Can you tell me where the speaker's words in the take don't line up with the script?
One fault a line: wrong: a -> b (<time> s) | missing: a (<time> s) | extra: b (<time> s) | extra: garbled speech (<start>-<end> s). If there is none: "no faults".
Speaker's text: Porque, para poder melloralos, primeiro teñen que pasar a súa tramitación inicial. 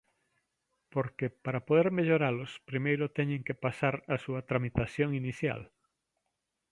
no faults